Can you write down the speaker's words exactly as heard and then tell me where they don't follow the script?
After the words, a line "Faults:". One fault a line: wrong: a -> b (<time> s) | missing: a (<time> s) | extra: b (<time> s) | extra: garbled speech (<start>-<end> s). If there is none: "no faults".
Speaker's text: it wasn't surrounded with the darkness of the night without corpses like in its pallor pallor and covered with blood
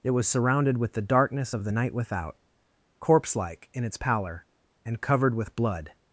it was surrounded with the darkness of the night without corpse like in its pallor and covered with blood
Faults:
wrong: wasn't -> was (0.1 s)
wrong: corpses -> corpse (3.0 s)
missing: pallor (4.5 s)